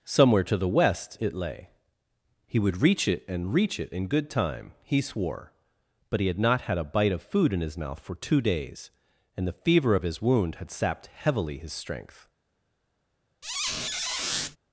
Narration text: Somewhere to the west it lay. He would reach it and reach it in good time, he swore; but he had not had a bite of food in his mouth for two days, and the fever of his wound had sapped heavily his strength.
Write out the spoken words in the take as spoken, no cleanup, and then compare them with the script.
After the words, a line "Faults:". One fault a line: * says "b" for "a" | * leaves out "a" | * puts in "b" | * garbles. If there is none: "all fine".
Somewhere to the west it lay. He would reach it and reach it in good time, he swore; but he had not had a bite of food in his mouth for two days, and the fever of his wound had sapped heavily his strength.
Faults:
all fine